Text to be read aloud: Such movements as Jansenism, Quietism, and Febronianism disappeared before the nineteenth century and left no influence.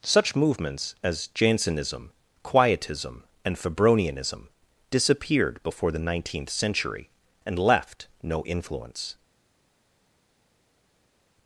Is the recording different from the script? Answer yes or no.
no